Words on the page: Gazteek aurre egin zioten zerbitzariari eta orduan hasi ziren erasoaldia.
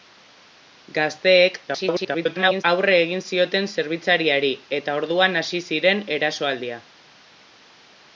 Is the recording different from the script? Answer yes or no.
yes